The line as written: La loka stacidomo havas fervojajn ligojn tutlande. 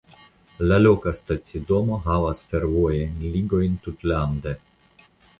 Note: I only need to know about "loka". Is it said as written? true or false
true